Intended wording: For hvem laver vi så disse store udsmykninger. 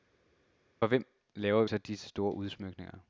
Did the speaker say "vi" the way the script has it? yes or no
no